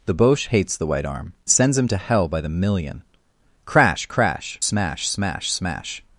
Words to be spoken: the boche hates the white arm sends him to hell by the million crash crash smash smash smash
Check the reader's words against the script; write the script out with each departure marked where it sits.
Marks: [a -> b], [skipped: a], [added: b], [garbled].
the boche hates the white arm sends him to hell by the million crash crash smash smash smash